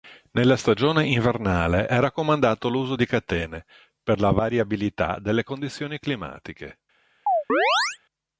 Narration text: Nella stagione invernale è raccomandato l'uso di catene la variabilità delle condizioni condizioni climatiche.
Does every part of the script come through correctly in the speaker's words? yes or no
no